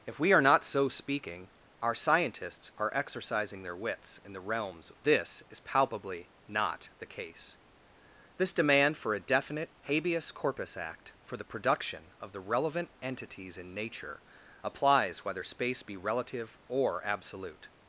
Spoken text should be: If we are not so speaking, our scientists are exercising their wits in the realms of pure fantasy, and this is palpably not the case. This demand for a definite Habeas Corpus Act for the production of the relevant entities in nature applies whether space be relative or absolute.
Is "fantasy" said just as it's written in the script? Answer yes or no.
no